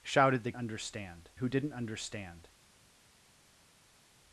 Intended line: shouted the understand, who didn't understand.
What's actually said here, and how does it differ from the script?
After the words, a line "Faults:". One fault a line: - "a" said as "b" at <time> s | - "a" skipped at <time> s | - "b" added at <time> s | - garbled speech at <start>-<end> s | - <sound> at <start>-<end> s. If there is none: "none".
shouted the understand, who didn't understand.
Faults:
none